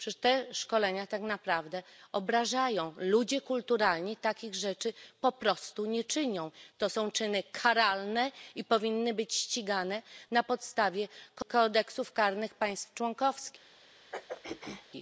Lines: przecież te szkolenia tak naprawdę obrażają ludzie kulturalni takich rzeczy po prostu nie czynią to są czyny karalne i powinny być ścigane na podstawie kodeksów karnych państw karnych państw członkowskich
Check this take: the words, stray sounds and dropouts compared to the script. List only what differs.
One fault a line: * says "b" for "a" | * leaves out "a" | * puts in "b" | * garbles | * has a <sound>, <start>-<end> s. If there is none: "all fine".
* leaves out "karnych państw"
* has a throat clearing, 14.1-14.9 s